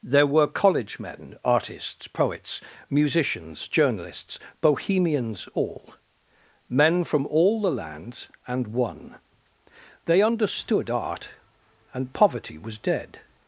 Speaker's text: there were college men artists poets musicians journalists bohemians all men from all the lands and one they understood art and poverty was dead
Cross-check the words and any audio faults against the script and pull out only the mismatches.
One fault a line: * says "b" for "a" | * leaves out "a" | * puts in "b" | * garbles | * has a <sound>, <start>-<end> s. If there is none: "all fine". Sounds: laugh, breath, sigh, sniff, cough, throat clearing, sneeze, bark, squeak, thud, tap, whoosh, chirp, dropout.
all fine